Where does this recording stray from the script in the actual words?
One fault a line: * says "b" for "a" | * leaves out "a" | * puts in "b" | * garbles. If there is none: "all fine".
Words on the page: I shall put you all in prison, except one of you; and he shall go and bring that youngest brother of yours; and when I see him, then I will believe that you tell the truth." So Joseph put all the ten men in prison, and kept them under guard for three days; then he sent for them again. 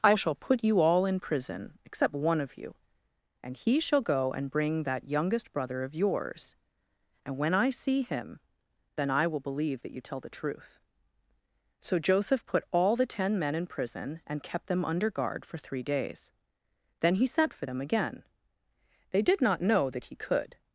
* puts in "They did not know that he could"